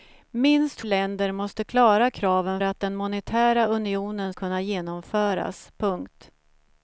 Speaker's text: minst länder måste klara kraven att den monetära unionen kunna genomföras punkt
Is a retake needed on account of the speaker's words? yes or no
no